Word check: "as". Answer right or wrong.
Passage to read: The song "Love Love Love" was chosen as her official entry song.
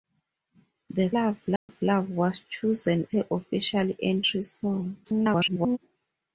wrong